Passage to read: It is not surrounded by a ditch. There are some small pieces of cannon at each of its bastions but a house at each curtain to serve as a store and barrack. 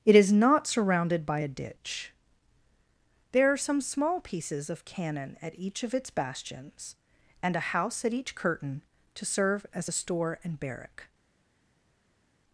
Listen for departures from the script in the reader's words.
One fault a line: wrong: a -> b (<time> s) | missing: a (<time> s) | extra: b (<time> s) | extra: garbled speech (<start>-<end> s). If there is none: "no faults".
wrong: but -> and (7.4 s)